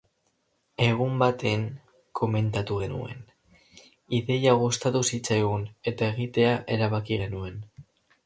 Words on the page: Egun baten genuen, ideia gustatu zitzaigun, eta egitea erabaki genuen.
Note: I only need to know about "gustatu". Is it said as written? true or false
true